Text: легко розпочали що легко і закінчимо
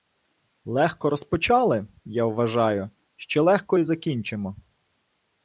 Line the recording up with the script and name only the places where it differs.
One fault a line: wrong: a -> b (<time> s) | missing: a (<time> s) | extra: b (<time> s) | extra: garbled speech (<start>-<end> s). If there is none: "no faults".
extra: я вважаю (2.0 s)